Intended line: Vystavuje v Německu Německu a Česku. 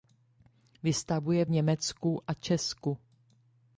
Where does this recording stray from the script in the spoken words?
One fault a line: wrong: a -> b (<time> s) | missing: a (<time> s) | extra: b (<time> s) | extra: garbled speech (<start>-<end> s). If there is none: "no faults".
missing: Německu (2.2 s)